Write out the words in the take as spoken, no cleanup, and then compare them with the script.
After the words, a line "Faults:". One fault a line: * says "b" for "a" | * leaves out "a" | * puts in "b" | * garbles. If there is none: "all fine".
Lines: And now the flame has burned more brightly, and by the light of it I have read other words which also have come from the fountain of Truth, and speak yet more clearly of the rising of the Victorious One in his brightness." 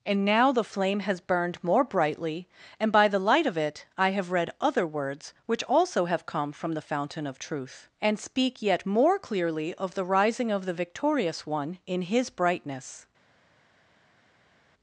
And now the flame has burned more brightly, and by the light of it I have read other words which also have come from the fountain of Truth, and speak yet more clearly of the rising of the Victorious One in his brightness."
Faults:
all fine